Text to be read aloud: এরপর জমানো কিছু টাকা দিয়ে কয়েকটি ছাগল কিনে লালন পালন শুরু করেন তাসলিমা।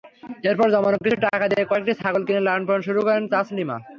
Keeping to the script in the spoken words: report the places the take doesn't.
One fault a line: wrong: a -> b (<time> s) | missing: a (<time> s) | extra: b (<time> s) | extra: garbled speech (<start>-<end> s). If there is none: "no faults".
no faults